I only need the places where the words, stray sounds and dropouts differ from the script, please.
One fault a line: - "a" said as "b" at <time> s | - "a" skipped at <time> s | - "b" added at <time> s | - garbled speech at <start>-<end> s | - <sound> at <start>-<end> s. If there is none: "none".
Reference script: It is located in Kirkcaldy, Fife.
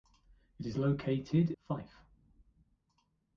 - "in Kirkcaldy" skipped at 1.5 s